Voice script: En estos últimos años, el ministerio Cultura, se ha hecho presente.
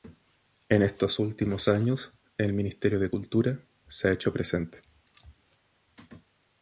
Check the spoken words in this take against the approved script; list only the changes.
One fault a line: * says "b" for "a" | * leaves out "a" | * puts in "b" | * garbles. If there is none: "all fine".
* puts in "de"